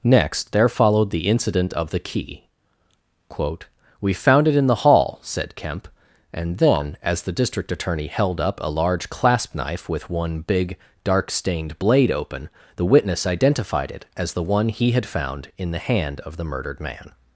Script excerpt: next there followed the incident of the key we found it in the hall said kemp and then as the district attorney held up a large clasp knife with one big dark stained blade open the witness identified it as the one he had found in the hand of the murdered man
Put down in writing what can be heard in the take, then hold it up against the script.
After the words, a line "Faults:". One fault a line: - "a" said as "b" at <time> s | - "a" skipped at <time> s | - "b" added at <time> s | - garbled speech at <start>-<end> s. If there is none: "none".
next there followed the incident of the key quote we found it in the hall said kemp and then as the district attorney held up a large clasp knife with one big dark stained blade open the witness identified it as the one he had found in the hand of the murdered man
Faults:
- "quote" added at 3.3 s